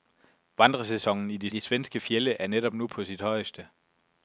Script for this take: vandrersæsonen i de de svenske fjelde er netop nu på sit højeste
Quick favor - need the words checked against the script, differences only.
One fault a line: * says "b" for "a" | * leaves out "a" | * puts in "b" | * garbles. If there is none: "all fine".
all fine